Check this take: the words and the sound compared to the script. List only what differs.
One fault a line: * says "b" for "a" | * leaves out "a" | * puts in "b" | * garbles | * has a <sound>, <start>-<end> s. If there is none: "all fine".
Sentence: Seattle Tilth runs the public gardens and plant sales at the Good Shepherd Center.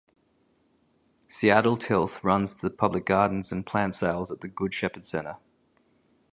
all fine